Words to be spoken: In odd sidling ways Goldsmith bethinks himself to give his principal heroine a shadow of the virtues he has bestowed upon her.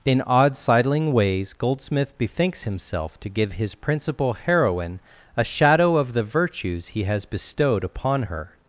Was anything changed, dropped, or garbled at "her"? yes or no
no